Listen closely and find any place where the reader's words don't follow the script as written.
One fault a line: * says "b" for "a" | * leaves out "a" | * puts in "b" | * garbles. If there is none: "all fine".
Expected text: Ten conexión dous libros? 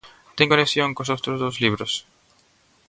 * puts in "cos outros"